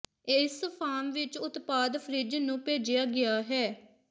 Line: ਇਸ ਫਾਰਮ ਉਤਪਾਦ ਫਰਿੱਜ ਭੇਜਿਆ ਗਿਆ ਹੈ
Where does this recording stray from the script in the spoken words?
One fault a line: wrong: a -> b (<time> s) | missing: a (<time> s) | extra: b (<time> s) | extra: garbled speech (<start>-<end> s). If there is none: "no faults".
extra: ਵਿੱਚ (1.1 s)
extra: ਨੂੰ (2.4 s)